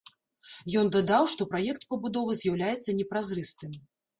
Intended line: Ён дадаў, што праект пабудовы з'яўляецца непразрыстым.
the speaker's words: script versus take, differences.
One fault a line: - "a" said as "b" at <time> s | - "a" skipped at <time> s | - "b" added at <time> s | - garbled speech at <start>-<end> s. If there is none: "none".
none